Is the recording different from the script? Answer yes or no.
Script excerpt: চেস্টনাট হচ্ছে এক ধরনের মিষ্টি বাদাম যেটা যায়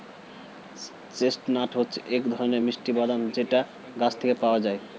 yes